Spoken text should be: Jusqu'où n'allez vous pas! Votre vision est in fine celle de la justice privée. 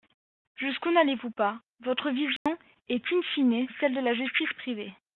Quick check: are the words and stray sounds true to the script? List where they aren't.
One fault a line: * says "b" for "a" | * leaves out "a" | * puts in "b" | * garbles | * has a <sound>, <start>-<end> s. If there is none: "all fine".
* has a dropout, 2.4-2.5 s